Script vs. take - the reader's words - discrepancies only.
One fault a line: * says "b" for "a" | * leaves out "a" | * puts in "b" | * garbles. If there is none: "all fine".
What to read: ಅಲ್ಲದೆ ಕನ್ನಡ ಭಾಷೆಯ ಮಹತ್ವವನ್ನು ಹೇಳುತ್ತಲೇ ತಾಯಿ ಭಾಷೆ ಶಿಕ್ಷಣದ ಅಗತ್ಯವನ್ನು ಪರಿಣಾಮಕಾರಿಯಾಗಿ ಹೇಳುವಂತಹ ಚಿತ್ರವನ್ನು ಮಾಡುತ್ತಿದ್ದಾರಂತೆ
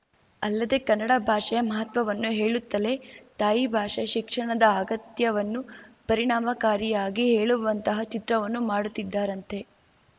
all fine